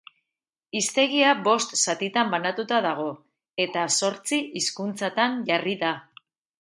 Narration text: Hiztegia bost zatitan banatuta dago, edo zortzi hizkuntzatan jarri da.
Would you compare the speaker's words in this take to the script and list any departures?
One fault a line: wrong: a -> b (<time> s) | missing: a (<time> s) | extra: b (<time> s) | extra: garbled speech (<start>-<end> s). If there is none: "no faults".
wrong: edo -> eta (3.6 s)